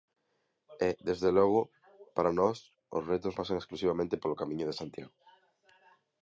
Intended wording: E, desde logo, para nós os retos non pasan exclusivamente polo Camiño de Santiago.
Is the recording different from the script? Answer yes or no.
yes